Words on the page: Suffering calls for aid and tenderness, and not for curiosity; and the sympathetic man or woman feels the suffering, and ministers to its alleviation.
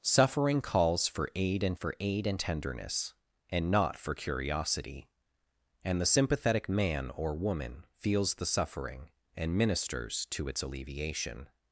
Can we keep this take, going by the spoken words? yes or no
no